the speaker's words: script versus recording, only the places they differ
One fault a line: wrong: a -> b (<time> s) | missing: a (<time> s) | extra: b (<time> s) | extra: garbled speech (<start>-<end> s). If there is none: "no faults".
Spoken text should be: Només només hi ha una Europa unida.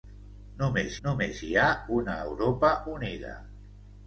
no faults